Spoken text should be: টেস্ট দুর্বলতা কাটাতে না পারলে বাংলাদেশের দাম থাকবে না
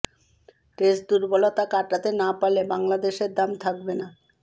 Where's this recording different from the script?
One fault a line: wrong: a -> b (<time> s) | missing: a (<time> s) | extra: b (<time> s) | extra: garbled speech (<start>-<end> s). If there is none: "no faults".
no faults